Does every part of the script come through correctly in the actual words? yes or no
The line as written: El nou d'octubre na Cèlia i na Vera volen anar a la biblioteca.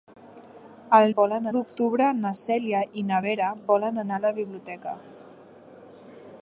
no